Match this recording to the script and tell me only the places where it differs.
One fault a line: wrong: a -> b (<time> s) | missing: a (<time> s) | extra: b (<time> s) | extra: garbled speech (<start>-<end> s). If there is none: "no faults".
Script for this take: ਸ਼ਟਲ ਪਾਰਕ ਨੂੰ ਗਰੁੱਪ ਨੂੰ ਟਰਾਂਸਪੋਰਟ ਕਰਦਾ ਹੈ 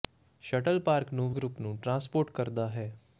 no faults